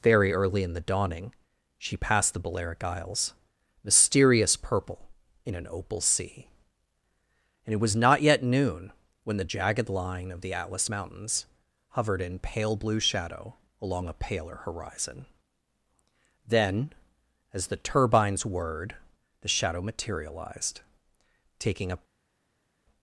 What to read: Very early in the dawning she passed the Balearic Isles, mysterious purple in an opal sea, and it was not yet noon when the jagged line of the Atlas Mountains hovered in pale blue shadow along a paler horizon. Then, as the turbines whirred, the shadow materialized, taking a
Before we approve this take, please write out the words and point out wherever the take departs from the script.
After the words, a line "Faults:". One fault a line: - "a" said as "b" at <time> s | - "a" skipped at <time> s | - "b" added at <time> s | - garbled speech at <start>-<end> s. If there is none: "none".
Very early in the dawning she passed the Balearic Isles, mysterious purple in an opal sea, and it was not yet noon when the jagged line of the Atlas Mountains hovered in pale blue shadow along a paler horizon. Then, as the turbines whirred, the shadow materialized, taking a
Faults:
none